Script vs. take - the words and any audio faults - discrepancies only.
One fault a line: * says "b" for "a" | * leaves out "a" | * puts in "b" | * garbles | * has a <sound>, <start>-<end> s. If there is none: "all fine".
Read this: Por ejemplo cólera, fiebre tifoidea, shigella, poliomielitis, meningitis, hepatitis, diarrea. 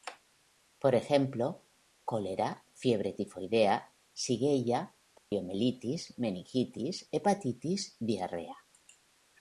* has a dropout, 5.2-5.3 s